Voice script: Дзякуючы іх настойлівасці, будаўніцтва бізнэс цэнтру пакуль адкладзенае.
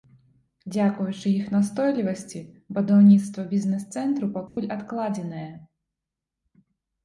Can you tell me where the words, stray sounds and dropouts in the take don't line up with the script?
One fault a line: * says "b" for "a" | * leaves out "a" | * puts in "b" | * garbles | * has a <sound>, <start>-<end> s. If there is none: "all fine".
* has a dropout, 4.5-4.6 s